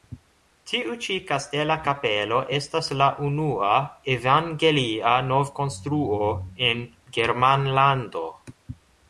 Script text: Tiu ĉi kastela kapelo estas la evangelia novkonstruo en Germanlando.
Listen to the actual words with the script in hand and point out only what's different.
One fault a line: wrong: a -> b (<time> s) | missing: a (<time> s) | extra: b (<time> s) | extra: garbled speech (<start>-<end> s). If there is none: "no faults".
extra: unua (3.3 s)